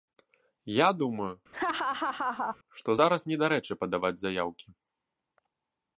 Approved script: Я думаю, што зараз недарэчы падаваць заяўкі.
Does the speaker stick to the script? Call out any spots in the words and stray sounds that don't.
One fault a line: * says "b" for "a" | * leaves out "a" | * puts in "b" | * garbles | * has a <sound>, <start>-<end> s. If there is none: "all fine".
* has a laugh, 1.5-2.6 s